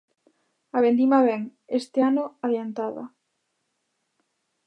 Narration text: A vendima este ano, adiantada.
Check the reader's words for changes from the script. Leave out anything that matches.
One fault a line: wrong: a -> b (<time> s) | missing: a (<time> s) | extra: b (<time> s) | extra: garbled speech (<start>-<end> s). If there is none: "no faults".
extra: vén (1.3 s)